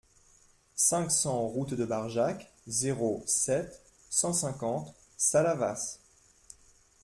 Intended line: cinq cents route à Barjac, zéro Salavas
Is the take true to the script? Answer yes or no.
no